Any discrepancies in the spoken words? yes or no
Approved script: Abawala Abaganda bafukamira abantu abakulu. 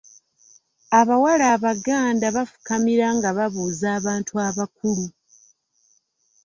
yes